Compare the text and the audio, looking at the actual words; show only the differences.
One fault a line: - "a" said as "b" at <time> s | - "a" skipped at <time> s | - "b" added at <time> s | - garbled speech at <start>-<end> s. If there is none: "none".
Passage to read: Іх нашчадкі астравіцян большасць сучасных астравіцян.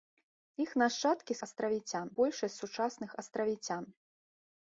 none